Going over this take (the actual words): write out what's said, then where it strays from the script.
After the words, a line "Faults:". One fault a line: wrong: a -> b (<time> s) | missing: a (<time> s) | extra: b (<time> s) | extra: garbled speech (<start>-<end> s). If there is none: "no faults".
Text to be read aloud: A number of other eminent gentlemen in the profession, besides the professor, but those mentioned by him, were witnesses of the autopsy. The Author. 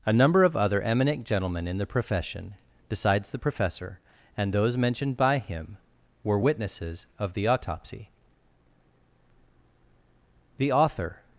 A number of other eminent gentlemen in the profession, besides the professor, and those mentioned by him, were witnesses of the autopsy. The Author.
Faults:
wrong: but -> and (4.3 s)